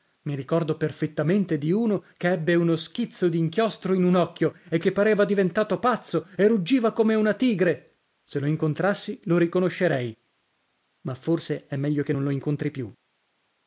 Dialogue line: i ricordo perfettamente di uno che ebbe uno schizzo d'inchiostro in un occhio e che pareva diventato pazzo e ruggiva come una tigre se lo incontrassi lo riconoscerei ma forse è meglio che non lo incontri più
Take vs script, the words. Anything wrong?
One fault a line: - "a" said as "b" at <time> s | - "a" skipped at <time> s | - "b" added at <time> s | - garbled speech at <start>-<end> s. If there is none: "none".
none